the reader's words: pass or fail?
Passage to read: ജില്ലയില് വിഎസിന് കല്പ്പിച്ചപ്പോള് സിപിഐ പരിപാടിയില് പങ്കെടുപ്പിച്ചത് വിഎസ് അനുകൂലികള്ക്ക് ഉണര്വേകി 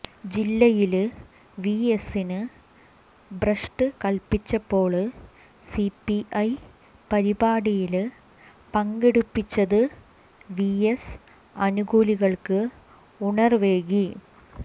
fail